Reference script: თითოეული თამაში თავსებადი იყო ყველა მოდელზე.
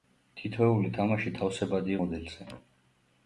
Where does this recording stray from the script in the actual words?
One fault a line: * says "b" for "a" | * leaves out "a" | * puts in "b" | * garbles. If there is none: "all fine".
* leaves out "იყო ყველა"